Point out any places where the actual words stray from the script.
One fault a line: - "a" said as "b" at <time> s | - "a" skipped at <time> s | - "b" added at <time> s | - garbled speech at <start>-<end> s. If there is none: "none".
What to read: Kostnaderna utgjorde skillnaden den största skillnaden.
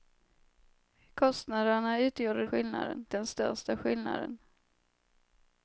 none